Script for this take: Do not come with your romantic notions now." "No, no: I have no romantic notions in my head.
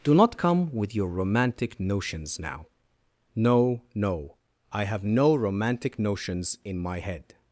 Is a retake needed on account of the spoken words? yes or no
no